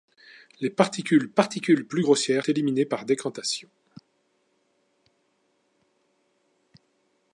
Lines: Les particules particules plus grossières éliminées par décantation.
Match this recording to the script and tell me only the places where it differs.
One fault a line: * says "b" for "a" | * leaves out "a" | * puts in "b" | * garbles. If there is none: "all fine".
all fine